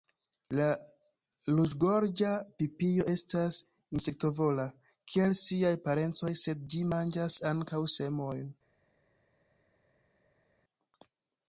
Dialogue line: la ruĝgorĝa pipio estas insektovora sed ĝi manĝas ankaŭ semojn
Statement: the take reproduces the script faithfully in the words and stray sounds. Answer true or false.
false